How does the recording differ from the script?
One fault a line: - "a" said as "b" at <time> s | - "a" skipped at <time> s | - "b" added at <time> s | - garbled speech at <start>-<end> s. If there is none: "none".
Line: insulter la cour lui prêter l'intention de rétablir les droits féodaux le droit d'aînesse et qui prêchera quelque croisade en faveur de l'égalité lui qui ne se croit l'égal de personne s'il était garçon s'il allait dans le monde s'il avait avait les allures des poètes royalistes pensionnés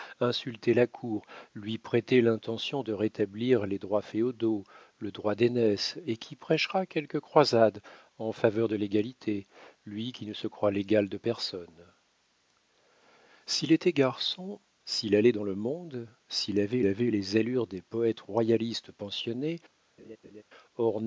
none